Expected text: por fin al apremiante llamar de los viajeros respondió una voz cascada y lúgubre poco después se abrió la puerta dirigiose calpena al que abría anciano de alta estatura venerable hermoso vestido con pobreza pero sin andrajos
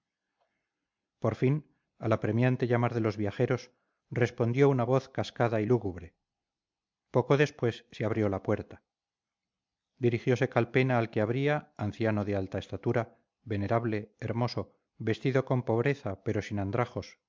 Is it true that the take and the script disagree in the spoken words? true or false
false